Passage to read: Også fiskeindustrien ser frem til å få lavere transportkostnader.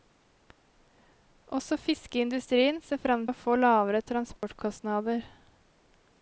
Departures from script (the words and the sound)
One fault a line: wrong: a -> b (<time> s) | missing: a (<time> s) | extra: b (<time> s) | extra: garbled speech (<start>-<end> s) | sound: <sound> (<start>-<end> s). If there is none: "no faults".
missing: til (3.3 s)
sound: dropout (4.4-4.4 s)